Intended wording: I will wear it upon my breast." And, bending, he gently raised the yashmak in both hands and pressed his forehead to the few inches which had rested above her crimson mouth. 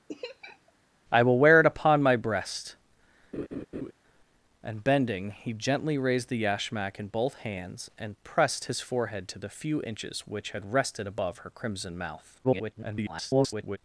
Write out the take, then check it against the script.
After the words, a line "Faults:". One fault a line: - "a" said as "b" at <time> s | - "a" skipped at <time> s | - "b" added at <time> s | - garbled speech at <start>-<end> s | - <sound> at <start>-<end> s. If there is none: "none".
I will wear it upon my breast." And, bending, he gently raised the yashmak in both hands and pressed his forehead to the few inches which had rested above her crimson mouth. [garbled]
Faults:
- laugh at 0.1-0.7 s
- laugh at 3.3-3.9 s
- garbled speech at 12.4-13.8 s